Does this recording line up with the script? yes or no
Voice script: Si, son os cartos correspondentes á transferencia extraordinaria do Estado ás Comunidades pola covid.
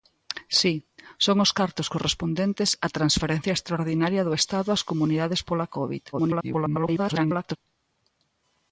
no